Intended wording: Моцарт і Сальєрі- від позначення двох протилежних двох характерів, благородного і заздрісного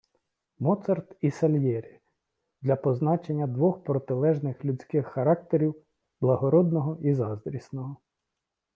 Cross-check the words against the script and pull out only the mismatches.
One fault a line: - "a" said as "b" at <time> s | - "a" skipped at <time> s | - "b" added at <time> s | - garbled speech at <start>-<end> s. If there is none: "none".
- "від" said as "для" at 2.6 s
- "двох" said as "людських" at 4.6 s